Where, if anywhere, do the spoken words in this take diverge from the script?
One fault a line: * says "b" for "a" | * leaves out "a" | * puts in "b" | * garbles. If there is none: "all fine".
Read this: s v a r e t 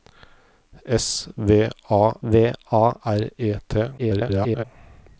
* puts in "v a"
* garbles